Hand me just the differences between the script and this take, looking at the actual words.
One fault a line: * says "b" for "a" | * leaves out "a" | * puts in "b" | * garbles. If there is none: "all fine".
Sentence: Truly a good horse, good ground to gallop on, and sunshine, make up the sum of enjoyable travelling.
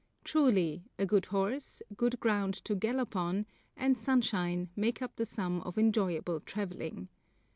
all fine